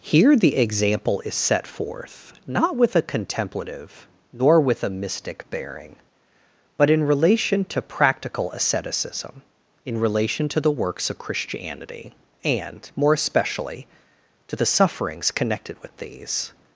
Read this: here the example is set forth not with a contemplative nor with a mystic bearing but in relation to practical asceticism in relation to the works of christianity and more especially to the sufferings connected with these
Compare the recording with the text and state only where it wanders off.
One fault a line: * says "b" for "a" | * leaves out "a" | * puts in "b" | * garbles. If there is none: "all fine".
all fine